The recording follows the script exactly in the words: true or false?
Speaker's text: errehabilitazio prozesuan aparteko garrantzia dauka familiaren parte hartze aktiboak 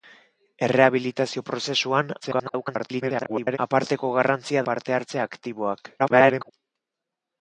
false